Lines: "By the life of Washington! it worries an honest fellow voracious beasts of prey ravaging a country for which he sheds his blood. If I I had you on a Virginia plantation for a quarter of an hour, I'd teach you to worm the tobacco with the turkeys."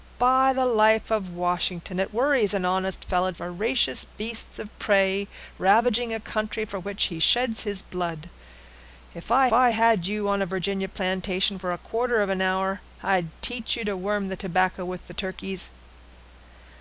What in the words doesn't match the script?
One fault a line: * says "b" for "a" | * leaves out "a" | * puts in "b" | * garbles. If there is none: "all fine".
all fine